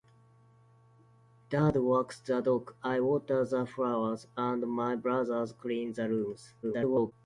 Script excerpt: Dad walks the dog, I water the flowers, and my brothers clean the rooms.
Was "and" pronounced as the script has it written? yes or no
yes